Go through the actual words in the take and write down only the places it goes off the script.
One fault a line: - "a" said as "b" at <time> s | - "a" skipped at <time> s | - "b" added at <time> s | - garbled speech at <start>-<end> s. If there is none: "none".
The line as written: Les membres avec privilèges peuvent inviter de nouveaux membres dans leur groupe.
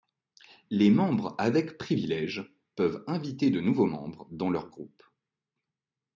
none